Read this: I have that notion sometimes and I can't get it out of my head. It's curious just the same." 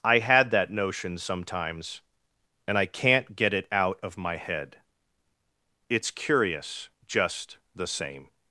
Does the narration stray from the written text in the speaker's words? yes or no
yes